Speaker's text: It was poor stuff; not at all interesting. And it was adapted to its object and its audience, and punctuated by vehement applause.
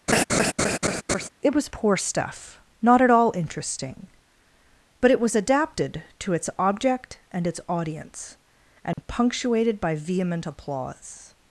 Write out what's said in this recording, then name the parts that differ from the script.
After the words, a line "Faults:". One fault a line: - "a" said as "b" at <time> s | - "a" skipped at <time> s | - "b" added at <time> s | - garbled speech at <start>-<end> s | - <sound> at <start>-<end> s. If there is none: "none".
It was poor stuff; not at all interesting. But it was adapted to its object and its audience, and punctuated by vehement applause.
Faults:
- laugh at 0.1-1.3 s
- "And" said as "But" at 5.0 s
- dropout at 8.9-9.0 s